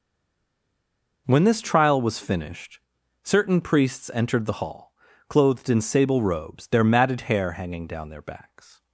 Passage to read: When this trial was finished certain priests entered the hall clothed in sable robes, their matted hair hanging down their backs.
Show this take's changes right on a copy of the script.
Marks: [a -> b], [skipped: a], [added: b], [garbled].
When this trial was finished certain priests entered the hall clothed in sable robes, their matted hair hanging down their backs.